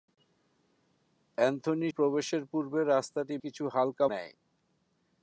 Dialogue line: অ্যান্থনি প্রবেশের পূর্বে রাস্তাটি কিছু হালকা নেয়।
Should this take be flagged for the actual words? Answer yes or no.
no